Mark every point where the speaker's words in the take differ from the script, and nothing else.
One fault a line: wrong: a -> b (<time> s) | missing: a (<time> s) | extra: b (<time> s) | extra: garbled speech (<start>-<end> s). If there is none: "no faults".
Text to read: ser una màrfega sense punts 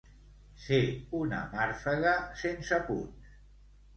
no faults